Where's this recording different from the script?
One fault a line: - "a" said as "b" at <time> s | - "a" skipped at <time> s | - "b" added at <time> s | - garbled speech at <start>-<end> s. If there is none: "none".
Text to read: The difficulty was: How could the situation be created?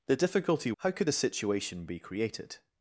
- "was" skipped at 0.7 s